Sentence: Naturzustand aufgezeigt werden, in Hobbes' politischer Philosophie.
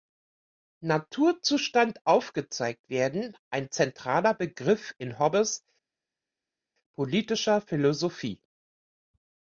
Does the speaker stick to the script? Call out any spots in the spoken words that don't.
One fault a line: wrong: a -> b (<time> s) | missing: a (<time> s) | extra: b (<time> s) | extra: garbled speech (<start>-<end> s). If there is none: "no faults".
extra: ein zentraler Begriff (3.5 s)